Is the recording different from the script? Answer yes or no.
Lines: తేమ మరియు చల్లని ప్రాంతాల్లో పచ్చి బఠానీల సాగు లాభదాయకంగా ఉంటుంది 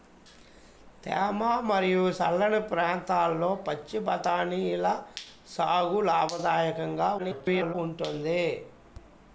yes